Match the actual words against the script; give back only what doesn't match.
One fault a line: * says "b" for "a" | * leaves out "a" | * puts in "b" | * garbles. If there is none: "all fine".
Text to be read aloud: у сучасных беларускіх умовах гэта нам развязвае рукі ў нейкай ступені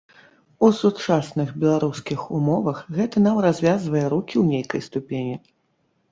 all fine